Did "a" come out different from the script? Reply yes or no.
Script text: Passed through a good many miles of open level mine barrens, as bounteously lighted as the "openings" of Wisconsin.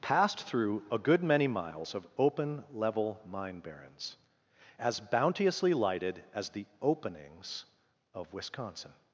no